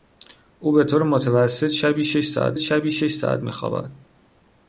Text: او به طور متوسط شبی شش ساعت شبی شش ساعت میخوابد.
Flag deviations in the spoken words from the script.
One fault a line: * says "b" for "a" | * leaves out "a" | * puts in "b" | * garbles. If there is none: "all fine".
all fine